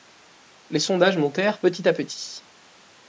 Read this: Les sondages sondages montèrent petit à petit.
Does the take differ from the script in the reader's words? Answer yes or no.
yes